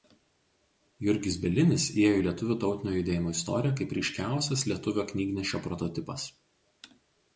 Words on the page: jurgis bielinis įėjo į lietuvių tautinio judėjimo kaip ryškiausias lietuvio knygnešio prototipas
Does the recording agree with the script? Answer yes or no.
no